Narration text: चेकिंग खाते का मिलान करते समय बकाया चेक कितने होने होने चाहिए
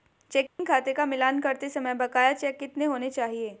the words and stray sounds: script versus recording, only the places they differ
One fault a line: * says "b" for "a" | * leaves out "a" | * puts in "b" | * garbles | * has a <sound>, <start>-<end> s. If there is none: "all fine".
* has a dropout, 0.5-0.6 s
* leaves out "होने"